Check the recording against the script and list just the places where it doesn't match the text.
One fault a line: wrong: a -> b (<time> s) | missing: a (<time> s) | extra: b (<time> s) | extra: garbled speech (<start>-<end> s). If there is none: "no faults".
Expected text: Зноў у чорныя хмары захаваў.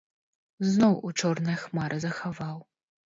no faults